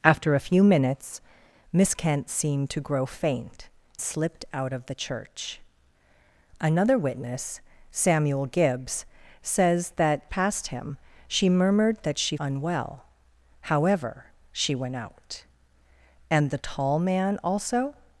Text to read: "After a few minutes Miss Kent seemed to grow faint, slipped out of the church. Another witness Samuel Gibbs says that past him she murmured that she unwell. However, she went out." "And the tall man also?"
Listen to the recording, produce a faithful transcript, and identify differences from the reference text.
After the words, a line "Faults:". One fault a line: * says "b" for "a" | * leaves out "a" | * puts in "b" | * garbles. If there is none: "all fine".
"After a few minutes Miss Kent seemed to grow faint, slipped out of the church. Another witness Samuel Gibbs says that past him she murmured that she unwell. However, she went out." "And the tall man also?"
Faults:
all fine